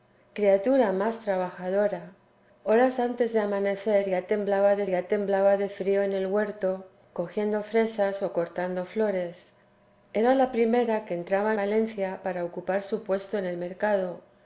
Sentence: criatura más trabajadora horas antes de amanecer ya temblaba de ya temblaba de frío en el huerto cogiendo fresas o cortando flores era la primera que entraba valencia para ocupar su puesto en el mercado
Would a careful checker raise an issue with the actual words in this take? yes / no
no